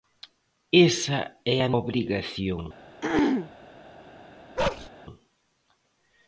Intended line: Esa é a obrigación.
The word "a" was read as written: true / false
true